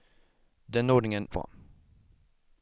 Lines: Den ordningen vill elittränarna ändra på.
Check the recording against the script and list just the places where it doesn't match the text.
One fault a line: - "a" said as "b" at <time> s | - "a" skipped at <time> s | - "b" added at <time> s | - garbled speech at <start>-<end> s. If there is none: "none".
- "vill elittränarna ändra" skipped at 1.3 s